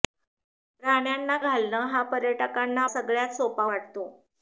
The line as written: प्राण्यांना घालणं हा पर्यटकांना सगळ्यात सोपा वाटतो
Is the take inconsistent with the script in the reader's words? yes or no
no